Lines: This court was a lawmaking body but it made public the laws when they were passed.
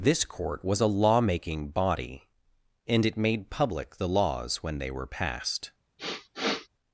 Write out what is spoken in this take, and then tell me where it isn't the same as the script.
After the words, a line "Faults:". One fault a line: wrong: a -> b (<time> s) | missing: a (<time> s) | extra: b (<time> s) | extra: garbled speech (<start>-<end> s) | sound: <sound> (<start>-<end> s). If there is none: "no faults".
This court was a lawmaking body and it made public the laws when they were passed.
Faults:
wrong: but -> and (2.9 s)
sound: sniff (6.0-6.7 s)